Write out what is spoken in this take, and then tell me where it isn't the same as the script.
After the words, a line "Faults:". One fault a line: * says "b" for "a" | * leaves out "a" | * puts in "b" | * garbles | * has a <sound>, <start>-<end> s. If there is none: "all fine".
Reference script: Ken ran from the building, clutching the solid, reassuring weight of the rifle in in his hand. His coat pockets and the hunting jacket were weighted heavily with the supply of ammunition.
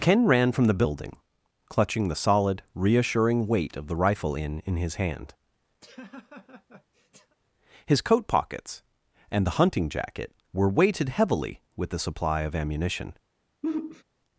Ken ran from the building, clutching the solid, reassuring weight of the rifle in in his hand. His coat pockets and the hunting jacket were weighted heavily with the supply of ammunition.
Faults:
* has a laugh, 5.8-7.4 s
* has a sigh, 13.6-14.0 s